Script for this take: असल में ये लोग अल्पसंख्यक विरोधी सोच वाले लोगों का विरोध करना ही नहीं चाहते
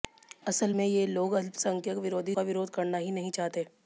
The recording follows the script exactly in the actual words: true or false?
false